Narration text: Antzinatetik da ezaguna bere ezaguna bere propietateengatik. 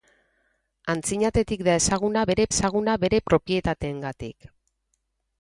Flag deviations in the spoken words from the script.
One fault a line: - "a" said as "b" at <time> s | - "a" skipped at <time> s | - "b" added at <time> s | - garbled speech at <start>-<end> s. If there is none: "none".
none